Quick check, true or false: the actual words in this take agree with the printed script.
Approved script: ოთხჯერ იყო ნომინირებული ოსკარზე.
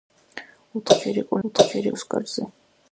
false